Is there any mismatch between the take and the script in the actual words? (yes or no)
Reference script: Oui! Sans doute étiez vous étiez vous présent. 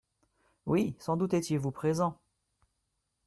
yes